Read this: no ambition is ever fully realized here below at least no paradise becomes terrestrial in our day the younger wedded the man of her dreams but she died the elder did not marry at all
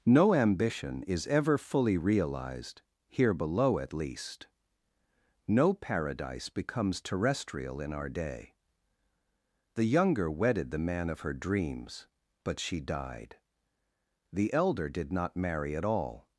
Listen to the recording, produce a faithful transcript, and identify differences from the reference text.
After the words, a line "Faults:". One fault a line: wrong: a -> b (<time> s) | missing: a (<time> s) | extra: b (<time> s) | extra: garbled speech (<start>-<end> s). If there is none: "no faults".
no ambition is ever fully realized here below at least no paradise becomes terrestrial in our day the younger wedded the man of her dreams but she died the elder did not marry at all
Faults:
no faults